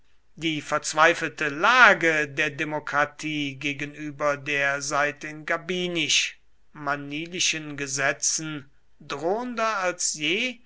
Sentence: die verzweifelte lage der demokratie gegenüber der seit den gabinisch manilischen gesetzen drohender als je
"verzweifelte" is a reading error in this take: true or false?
false